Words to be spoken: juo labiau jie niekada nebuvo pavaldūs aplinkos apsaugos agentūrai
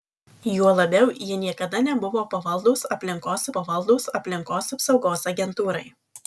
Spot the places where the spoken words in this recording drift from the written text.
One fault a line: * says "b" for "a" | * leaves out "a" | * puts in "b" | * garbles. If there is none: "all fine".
* puts in "pavaldūs aplinkos"